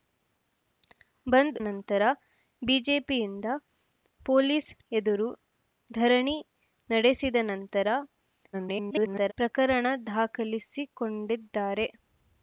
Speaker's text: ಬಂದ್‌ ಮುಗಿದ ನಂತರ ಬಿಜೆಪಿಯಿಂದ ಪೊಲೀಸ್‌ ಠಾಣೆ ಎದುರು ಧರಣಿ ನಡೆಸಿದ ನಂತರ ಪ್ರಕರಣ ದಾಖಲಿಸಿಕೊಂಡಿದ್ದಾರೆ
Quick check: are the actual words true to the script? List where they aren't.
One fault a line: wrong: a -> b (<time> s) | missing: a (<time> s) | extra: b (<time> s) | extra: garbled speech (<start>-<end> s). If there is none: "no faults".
missing: ಮುಗಿದ (1.6 s)
missing: ಠಾಣೆ (4.7 s)
extra: garbled speech (8.5-9.3 s)